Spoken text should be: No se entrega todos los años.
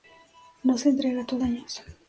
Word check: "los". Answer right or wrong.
wrong